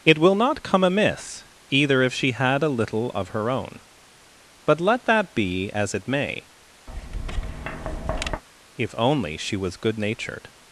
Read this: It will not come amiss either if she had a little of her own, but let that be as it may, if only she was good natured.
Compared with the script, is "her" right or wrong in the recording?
right